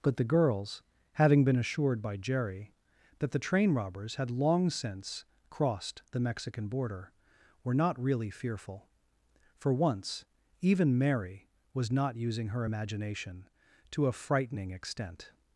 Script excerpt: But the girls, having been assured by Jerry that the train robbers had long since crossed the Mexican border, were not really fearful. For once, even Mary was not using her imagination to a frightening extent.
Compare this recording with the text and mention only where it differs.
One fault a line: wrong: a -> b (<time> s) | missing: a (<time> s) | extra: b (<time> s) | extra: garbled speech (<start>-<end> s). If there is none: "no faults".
no faults